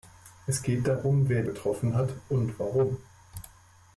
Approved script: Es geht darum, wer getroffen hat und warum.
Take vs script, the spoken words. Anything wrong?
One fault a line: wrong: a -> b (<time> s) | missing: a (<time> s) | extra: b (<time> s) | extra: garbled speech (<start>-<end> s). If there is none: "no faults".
no faults